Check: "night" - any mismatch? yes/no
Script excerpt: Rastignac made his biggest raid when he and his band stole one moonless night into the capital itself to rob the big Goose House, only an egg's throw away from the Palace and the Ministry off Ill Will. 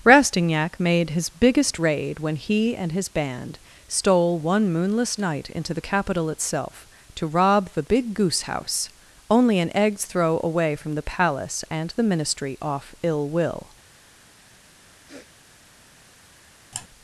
no